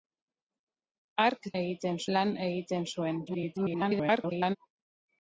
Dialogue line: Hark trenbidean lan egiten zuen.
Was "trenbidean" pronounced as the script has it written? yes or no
no